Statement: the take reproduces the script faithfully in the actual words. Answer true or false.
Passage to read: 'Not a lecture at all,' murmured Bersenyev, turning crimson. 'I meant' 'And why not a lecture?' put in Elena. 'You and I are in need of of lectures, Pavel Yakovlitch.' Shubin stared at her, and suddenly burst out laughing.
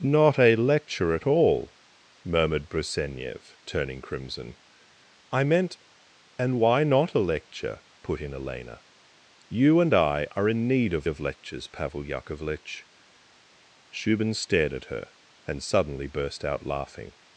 true